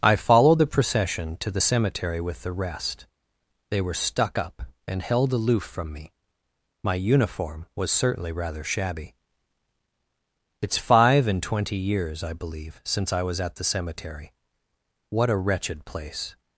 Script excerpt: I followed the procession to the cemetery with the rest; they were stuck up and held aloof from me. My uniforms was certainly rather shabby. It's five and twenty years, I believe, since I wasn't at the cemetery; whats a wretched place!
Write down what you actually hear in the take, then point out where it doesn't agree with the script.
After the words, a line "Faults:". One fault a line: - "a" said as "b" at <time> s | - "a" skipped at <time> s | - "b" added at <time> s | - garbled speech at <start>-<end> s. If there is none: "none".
I followed the procession to the cemetery with the rest; they were stuck up and held aloof from me. My uniform was certainly rather shabby. It's five and twenty years, I believe, since I was at the cemetery; what a wretched place!
Faults:
- "uniforms" said as "uniform" at 7.0 s
- "wasn't" said as "was" at 13.2 s
- "whats" said as "what" at 15.1 s